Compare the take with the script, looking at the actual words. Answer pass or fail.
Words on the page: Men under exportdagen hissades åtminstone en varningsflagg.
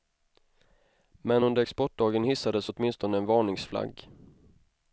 pass